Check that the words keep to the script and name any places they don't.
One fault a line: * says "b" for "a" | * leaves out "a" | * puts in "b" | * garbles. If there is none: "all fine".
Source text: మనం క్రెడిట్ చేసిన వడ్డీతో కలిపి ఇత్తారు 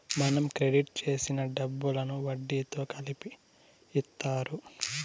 * puts in "డబ్బులను"